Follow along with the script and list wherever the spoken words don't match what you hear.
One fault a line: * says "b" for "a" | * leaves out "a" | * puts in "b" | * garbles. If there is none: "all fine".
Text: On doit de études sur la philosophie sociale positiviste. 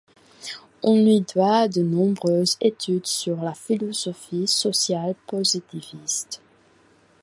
* puts in "lui"
* puts in "nombreuses"